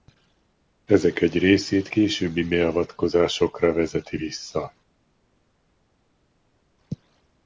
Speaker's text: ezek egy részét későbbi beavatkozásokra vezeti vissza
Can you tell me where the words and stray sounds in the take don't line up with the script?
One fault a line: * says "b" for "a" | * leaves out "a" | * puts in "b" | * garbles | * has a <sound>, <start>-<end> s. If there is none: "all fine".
all fine